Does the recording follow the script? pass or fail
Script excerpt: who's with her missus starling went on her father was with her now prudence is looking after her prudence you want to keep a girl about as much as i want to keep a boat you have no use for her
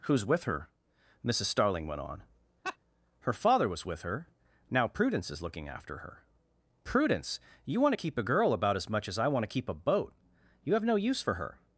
pass